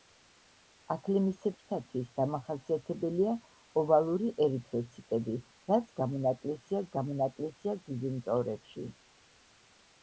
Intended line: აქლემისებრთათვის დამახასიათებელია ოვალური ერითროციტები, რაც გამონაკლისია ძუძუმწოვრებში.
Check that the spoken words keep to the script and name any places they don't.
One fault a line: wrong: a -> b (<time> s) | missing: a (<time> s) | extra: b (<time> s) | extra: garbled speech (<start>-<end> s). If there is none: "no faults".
extra: გამონაკლისია (7.0 s)